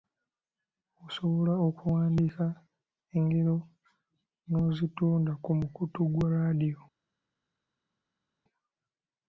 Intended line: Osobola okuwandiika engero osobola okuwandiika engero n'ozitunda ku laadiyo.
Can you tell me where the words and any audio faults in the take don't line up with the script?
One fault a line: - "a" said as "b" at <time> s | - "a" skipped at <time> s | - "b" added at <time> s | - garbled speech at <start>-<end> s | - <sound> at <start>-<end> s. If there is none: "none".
- "osobola okuwandiika engero n'ozitunda ku" said as "n'ozitunda ku mukutu gwa" at 4.5 s